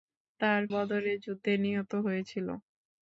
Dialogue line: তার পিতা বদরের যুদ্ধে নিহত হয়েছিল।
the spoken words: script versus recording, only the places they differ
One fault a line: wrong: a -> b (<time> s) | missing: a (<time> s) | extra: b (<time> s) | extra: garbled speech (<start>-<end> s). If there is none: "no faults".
missing: পিতা (0.6 s)